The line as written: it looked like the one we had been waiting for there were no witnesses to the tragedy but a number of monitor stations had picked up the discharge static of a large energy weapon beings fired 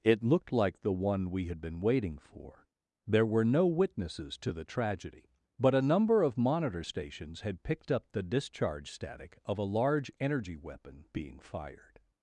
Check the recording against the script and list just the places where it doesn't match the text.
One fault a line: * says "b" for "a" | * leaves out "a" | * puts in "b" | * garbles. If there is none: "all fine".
* says "being" for "beings"